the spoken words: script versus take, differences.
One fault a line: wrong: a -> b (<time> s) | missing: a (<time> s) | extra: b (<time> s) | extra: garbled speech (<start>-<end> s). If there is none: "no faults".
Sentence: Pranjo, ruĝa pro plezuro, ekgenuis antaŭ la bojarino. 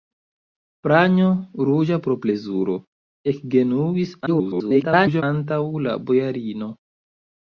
extra: garbled speech (4.3-5.2 s)